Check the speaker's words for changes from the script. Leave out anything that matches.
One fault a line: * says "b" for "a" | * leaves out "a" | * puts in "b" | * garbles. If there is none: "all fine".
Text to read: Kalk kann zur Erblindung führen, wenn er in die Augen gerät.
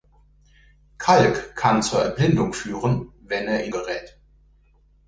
* leaves out "die Augen"